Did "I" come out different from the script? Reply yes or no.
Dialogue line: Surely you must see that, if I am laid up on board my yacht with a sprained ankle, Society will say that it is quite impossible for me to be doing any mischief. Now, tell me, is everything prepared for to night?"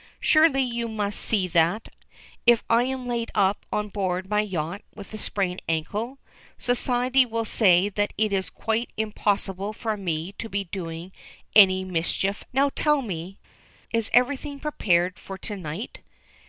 no